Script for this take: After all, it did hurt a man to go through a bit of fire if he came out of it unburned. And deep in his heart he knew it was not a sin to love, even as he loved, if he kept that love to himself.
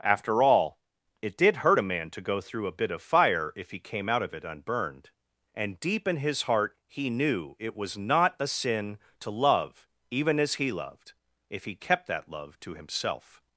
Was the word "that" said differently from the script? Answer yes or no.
no